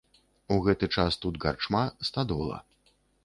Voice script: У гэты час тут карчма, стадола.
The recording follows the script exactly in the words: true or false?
true